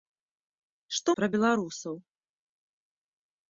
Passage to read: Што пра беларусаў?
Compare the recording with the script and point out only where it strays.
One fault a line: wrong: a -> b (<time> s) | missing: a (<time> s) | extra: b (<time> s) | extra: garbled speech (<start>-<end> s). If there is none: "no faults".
no faults